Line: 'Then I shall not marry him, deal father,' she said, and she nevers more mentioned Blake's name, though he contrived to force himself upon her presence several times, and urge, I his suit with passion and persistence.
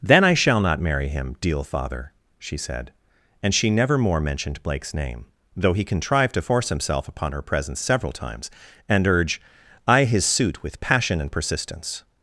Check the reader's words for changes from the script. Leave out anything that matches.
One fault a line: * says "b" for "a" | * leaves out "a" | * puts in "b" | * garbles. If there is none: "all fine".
* says "never" for "nevers"